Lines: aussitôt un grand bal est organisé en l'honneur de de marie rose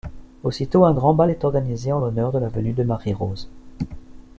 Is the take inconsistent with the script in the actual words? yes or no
yes